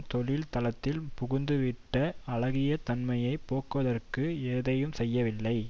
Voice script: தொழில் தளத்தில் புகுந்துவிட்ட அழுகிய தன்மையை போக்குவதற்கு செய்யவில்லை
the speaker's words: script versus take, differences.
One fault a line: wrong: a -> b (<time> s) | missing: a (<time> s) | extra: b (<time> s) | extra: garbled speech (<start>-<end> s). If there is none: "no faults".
extra: எதையும் (4.5 s)